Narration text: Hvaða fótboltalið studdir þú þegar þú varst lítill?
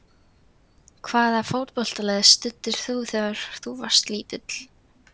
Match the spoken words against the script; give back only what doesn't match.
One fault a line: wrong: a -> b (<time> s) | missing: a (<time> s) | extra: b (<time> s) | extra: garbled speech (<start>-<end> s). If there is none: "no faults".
no faults